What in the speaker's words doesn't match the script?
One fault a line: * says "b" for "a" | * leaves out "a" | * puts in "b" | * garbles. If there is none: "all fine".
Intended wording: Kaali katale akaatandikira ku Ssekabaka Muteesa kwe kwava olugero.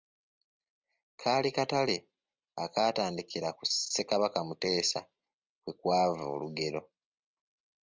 all fine